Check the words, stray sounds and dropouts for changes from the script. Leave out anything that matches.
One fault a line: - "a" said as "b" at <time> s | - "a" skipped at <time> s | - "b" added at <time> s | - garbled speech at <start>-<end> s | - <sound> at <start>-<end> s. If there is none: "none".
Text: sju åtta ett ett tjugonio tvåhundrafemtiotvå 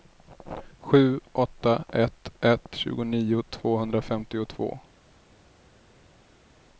none